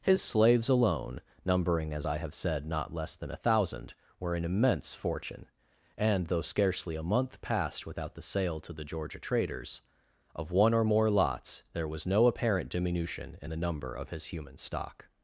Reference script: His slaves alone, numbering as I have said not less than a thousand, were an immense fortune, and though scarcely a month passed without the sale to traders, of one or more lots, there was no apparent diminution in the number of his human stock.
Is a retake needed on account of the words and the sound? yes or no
yes